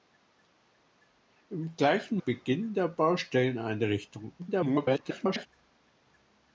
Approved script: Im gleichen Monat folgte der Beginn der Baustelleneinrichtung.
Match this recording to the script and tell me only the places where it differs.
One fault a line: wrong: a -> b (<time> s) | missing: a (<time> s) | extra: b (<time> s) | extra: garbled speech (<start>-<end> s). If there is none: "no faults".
missing: Monat folgte der (2.2 s)
extra: garbled speech (4.4-5.5 s)